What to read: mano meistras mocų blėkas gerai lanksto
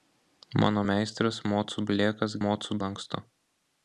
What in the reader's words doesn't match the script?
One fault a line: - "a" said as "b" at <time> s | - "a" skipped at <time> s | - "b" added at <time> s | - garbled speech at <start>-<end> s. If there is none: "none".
- "gerai" said as "mocų" at 2.5 s